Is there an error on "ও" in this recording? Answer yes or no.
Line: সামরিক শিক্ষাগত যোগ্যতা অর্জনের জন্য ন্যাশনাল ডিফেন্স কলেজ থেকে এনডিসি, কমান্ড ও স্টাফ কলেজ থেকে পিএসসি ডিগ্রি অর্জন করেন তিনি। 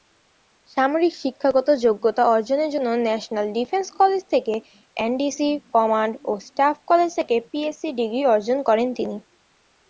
no